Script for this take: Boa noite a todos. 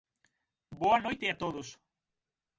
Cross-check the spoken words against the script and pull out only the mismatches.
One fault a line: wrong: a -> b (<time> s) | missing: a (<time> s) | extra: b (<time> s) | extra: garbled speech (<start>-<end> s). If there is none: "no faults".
no faults